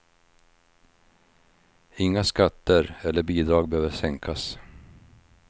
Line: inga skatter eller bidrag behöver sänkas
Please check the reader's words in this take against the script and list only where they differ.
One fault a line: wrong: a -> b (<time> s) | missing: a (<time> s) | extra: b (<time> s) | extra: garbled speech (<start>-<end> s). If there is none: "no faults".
no faults